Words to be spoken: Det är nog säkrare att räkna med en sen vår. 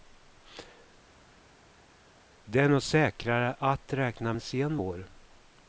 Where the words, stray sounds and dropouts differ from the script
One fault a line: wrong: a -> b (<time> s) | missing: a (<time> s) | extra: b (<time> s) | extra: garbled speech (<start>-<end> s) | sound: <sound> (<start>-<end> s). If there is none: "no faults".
missing: med (4.3 s)